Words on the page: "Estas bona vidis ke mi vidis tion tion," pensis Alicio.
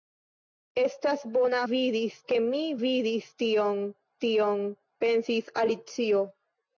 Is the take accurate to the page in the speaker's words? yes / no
yes